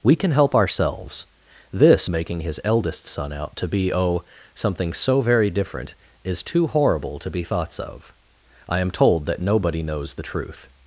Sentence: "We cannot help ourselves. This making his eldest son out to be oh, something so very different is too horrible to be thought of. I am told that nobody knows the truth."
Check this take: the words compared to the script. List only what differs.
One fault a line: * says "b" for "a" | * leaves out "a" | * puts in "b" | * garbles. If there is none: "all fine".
* says "can" for "cannot"
* says "thoughts" for "thought"